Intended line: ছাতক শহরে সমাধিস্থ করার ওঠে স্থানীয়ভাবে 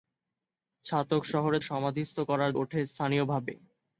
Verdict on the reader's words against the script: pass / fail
pass